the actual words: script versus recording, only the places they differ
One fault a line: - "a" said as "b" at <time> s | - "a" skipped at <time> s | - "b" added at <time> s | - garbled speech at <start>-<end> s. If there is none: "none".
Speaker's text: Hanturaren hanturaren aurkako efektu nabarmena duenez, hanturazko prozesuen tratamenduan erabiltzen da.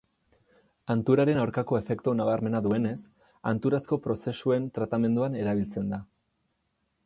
- "hanturaren" skipped at 1.4 s